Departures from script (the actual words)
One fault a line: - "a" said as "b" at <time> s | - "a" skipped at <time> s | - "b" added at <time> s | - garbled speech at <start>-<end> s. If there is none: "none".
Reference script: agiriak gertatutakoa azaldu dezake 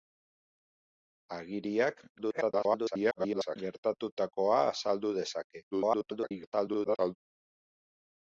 - garbled speech at 2.2-3.6 s
- garbled speech at 5.7-7.2 s